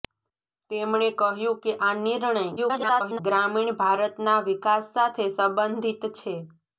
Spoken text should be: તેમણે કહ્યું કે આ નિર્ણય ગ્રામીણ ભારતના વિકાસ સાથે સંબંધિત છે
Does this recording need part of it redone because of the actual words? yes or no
yes